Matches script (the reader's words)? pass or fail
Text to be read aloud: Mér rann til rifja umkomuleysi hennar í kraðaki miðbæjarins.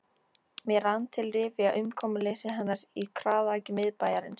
pass